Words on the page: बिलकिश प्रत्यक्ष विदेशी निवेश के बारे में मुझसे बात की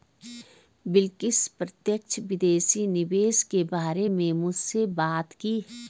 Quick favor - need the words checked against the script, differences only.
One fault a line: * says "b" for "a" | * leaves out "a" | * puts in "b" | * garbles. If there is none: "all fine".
all fine